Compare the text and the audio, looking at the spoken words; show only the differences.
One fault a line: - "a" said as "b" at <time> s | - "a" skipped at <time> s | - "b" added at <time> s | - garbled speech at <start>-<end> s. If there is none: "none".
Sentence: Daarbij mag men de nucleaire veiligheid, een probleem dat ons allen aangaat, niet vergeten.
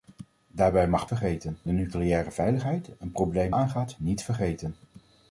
- "men" said as "vergeten" at 1.0 s
- "dat ons allen" skipped at 3.5 s